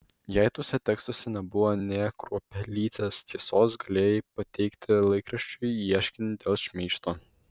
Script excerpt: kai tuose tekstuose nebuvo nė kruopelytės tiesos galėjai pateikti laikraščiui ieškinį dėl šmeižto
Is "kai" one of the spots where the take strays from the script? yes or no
yes